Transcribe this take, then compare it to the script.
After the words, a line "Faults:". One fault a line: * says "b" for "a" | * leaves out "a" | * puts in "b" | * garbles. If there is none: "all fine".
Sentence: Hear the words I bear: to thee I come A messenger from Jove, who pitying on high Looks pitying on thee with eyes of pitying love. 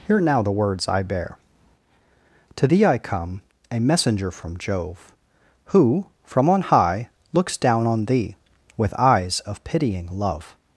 Hear now the words I bear: to thee I come A messenger from Jove, who from on high Looks down on thee with eyes of pitying love.
Faults:
* puts in "now"
* says "from" for "pitying"
* says "down" for "pitying"